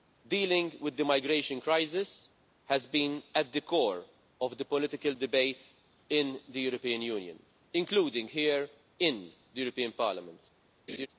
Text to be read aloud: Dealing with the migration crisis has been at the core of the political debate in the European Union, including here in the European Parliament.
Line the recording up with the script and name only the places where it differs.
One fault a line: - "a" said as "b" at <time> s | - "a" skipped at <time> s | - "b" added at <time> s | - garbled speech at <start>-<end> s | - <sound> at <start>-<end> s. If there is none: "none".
- laugh at 10.9-11.1 s